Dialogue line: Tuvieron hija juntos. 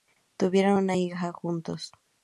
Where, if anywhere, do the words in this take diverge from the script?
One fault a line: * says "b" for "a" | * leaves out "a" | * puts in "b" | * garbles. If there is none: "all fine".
* puts in "una"